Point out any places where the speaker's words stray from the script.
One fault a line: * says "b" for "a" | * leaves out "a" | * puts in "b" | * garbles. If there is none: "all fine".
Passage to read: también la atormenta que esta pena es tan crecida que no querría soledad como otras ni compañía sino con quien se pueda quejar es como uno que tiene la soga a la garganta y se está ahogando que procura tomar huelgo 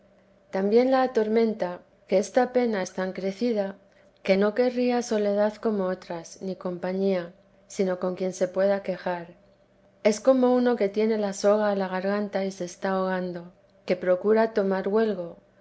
all fine